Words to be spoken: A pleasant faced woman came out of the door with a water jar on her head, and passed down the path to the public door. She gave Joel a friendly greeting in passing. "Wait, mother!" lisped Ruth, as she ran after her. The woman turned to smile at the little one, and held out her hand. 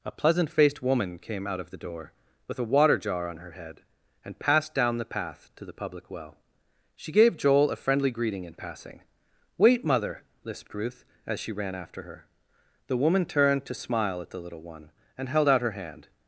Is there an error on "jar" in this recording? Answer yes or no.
no